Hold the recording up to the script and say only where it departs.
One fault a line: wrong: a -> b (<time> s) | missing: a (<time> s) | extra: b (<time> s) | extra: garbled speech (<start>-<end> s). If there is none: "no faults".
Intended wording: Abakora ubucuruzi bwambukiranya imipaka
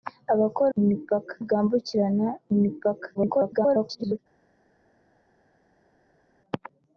wrong: ubucuruzi -> imipaka (0.8 s)
extra: garbled speech (3.1-4.2 s)